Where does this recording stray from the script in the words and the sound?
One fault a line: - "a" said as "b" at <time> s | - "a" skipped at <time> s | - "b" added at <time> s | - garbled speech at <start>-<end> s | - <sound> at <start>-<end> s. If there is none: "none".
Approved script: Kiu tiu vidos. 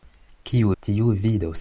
none